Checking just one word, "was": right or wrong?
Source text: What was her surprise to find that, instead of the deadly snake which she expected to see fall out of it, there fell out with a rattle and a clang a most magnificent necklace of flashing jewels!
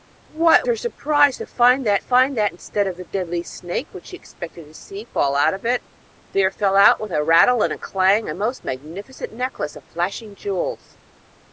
wrong